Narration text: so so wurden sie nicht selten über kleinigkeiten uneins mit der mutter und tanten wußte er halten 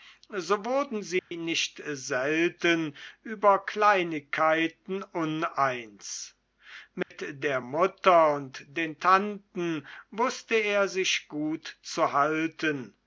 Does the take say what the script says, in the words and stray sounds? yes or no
no